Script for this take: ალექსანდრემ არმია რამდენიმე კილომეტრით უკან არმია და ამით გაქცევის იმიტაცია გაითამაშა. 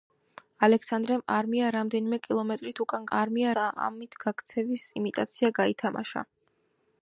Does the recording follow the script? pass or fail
pass